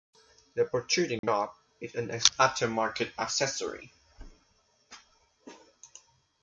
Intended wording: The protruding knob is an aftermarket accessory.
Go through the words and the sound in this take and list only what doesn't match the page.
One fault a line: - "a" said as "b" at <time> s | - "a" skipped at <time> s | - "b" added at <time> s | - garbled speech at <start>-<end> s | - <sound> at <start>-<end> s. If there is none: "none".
- dropout at 1.2-1.2 s